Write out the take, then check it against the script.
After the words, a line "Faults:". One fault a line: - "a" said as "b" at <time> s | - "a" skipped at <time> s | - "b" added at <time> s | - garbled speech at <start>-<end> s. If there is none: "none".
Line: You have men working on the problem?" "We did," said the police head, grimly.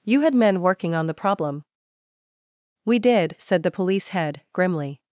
You had men working on the problem?" "We did," said the police head, grimly.
Faults:
- "have" said as "had" at 0.2 s